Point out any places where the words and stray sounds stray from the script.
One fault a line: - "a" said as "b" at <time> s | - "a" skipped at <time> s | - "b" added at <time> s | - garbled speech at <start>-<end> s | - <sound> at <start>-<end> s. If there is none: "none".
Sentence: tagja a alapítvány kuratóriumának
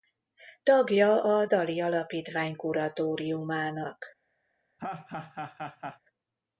- "dali" added at 1.4 s
- laugh at 4.8-6.0 s